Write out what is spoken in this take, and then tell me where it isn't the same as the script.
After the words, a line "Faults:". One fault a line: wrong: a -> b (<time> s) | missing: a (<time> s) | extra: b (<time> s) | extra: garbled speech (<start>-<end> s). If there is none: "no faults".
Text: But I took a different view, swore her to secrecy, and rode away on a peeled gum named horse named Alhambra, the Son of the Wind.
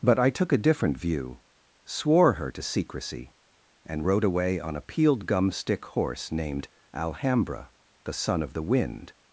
But I took a different view, swore her to secrecy, and rode away on a peeled gum stick horse named Alhambra, the Son of the Wind.
Faults:
wrong: named -> stick (5.5 s)